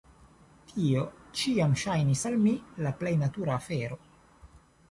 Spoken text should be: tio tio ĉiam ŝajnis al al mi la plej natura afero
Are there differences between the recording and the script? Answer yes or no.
yes